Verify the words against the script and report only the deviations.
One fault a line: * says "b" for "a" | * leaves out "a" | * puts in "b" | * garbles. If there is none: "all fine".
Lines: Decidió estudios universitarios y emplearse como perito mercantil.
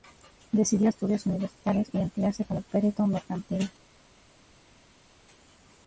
all fine